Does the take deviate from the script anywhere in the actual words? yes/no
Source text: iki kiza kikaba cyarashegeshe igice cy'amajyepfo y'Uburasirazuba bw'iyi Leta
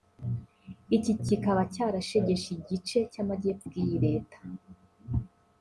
yes